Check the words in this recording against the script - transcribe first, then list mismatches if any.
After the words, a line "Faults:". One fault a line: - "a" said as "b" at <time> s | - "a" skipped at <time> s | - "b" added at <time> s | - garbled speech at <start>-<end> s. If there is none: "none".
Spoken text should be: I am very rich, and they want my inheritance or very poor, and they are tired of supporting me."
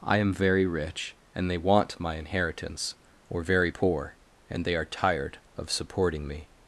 I am very rich, and they want my inheritance or very poor, and they are tired of supporting me."
Faults:
none